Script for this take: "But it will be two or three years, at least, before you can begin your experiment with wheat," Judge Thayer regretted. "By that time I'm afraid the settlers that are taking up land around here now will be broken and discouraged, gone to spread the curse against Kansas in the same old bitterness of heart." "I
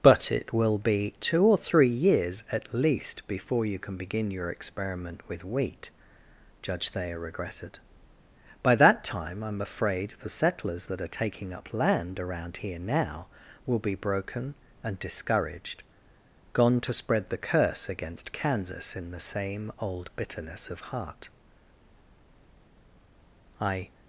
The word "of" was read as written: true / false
true